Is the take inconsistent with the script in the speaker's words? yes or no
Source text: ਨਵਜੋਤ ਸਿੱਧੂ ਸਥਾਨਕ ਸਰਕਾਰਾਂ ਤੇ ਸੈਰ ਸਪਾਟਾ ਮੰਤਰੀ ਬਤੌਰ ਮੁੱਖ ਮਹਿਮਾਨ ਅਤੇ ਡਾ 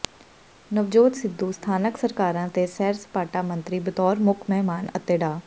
no